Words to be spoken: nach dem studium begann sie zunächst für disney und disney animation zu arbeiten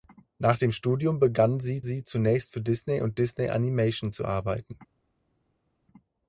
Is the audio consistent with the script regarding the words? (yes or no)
no